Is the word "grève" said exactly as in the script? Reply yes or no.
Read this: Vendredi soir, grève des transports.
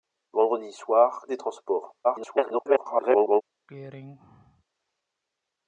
no